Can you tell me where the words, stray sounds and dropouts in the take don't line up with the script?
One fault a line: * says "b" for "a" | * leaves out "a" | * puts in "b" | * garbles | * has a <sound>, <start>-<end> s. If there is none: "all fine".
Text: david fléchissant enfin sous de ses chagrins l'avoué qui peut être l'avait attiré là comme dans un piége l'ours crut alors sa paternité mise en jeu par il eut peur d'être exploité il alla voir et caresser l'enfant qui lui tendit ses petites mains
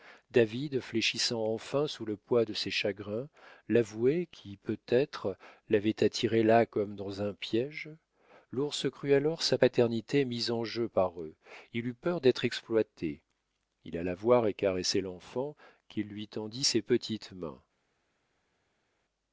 * puts in "le poids"
* puts in "eux"